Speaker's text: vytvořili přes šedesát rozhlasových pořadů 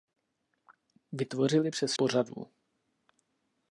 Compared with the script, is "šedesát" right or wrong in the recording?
wrong